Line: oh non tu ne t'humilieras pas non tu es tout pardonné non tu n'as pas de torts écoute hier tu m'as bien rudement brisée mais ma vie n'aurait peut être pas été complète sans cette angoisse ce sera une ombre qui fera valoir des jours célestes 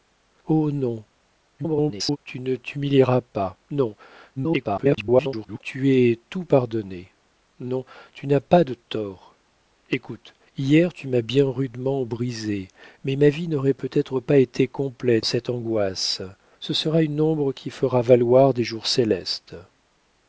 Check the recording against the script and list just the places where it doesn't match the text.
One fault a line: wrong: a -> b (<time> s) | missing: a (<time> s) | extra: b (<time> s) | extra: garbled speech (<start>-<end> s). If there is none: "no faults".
extra: garbled speech (1.6-2.2 s)
extra: garbled speech (4.4-5.6 s)
missing: sans (15.3 s)